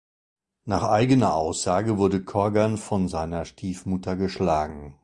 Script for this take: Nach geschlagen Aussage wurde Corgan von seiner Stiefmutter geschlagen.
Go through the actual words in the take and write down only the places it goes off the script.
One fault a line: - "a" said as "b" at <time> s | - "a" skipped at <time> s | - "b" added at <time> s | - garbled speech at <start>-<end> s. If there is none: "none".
- "geschlagen" said as "eigener" at 0.8 s